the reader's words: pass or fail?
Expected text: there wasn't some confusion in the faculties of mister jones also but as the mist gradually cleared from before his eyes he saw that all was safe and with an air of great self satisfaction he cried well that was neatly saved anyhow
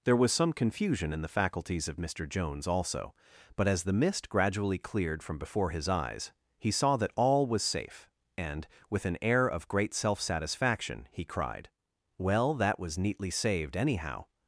fail